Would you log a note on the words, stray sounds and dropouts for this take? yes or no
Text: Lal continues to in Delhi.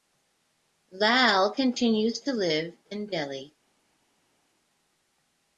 yes